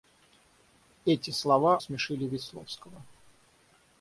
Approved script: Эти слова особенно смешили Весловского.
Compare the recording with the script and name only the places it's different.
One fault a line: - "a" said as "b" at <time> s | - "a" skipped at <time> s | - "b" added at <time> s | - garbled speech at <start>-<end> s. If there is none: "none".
- "особенно" skipped at 1.8 s